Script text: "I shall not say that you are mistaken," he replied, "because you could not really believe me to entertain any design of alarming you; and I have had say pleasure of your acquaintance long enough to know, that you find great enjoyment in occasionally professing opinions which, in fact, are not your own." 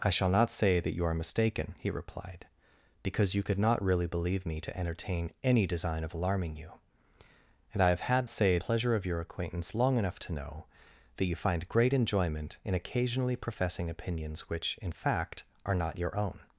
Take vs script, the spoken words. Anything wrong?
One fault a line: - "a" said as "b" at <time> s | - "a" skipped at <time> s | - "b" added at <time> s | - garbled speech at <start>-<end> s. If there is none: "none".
none